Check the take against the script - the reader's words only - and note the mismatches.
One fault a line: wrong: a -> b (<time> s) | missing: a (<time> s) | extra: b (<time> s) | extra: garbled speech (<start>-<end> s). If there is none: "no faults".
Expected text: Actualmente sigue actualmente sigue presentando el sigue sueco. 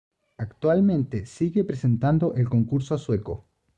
missing: actualmente sigue (1.6 s)
wrong: sigue -> concurso (2.5 s)